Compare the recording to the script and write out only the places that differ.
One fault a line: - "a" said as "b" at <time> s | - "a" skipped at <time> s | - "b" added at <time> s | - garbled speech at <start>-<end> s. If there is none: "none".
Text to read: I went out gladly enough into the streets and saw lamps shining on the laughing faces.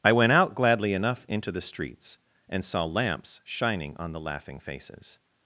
none